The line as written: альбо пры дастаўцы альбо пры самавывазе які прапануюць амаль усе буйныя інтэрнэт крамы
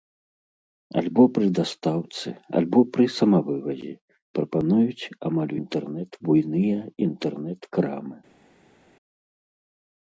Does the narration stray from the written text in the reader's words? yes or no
yes